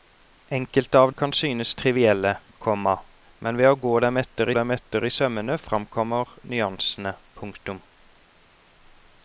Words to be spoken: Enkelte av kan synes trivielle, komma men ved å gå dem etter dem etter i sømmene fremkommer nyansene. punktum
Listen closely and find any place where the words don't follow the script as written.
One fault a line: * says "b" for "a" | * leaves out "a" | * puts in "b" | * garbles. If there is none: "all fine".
all fine